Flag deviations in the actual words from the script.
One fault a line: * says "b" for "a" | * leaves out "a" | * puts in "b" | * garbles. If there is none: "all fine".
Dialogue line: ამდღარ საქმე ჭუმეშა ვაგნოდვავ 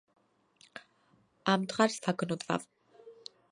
* leaves out "საქმე ჭუმეშა"